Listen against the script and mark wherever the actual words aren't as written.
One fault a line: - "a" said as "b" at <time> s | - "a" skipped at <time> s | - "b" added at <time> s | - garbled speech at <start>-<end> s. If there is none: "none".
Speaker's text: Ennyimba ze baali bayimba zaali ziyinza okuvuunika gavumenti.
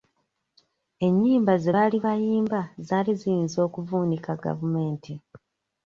none